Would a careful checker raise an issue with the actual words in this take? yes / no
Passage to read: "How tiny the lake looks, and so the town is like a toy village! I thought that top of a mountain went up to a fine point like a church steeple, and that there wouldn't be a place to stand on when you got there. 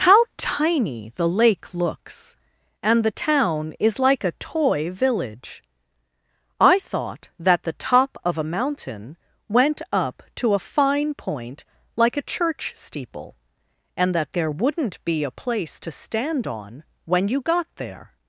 yes